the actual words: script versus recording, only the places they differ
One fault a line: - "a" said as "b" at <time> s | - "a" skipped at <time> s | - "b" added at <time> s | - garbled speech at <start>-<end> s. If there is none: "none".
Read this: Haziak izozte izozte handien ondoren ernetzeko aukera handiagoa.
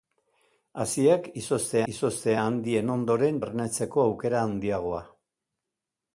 none